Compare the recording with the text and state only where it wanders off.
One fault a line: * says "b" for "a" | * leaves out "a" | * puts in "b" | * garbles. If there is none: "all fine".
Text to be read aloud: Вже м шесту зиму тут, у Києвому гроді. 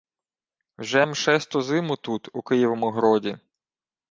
all fine